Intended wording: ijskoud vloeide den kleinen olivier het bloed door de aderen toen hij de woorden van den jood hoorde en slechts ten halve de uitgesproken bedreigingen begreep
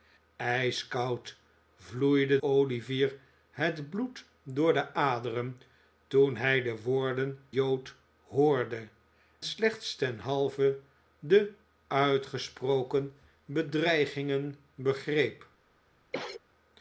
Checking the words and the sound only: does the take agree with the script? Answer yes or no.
no